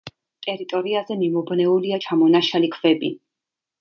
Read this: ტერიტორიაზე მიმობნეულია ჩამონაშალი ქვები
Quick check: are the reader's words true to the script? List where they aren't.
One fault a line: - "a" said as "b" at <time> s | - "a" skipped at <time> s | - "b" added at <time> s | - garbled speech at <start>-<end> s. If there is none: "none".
none